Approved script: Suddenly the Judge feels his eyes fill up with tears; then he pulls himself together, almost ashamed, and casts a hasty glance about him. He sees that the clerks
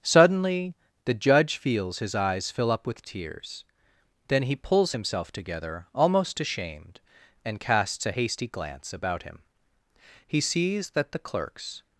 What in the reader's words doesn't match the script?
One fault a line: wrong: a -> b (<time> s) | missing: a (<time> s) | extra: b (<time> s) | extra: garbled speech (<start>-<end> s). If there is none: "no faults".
no faults